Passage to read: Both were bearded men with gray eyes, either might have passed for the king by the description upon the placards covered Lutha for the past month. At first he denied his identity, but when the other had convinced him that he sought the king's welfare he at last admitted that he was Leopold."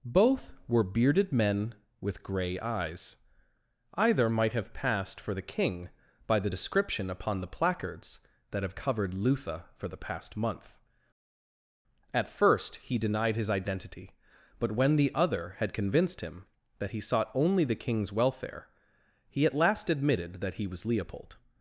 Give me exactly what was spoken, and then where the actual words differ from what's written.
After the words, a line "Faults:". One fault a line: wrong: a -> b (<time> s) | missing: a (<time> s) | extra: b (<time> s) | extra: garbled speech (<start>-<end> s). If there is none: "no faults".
Both were bearded men with gray eyes, either might have passed for the king by the description upon the placards that have covered Lutha for the past month. At first he denied his identity, but when the other had convinced him that he sought only the king's welfare he at last admitted that he was Leopold."
Faults:
extra: that have (8.5 s)
extra: only (17.3 s)